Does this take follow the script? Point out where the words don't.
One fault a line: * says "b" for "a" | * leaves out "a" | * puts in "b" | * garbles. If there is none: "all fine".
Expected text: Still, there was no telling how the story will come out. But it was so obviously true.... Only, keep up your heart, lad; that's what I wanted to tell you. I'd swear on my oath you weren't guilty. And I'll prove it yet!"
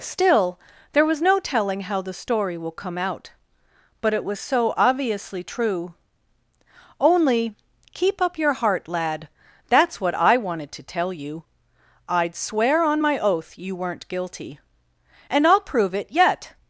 all fine